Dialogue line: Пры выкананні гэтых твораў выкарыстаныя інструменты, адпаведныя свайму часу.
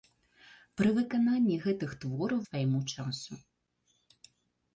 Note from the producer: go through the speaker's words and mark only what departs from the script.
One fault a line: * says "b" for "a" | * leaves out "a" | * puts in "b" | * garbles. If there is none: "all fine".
* leaves out "выкарыстаныя інструменты адпаведныя"